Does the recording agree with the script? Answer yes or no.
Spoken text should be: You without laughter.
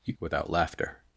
yes